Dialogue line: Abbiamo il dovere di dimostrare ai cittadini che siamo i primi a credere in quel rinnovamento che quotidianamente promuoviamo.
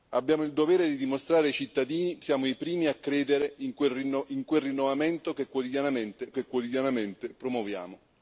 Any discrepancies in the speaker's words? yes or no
yes